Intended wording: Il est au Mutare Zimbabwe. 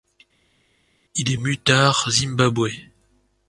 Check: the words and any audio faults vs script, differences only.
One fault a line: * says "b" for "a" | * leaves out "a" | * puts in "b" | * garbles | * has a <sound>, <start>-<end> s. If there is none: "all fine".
all fine